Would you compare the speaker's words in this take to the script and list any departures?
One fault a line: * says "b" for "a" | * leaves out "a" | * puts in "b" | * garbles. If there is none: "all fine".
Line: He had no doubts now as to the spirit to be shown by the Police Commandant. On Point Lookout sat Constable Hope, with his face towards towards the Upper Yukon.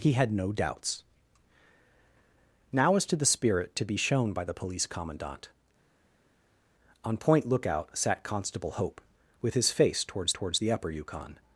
all fine